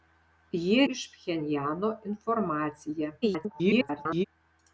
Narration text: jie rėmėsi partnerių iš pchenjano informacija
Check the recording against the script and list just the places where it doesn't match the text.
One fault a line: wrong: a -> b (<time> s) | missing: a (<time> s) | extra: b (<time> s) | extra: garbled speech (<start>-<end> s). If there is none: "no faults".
missing: rėmėsi partnerių (0.9 s)
extra: garbled speech (3.2-4.2 s)